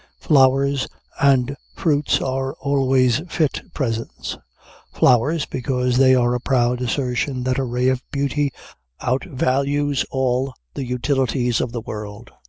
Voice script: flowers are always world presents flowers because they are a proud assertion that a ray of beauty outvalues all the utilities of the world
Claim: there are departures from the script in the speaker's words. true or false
true